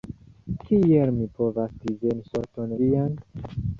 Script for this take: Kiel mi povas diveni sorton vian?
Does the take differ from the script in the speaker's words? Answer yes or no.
no